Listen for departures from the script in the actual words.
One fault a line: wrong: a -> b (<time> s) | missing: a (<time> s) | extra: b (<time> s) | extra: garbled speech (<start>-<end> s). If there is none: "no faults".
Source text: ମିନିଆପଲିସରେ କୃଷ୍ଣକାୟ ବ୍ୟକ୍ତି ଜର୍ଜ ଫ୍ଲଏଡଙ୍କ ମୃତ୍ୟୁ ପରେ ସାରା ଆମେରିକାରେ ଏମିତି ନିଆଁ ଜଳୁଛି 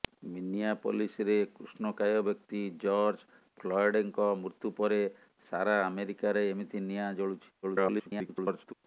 extra: garbled speech (7.6-8.7 s)